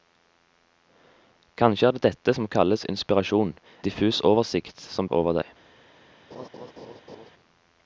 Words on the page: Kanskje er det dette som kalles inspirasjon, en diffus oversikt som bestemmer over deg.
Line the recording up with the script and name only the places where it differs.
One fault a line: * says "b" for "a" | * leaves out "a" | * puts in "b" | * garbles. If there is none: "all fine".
* leaves out "en"
* leaves out "bestemmer"